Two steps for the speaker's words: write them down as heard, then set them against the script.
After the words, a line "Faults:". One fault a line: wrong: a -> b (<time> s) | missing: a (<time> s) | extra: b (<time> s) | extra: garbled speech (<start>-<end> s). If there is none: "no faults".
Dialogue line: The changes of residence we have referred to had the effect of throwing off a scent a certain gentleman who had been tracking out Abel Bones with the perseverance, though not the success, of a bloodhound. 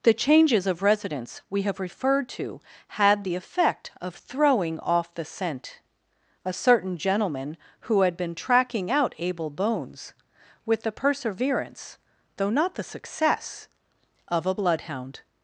The changes of residence we have referred to had the effect of throwing off the scent a certain gentleman who had been tracking out Abel Bones with the perseverance, though not the success, of a bloodhound.
Faults:
wrong: a -> the (5.1 s)